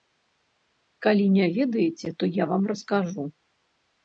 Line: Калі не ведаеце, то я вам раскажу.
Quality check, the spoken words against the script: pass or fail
pass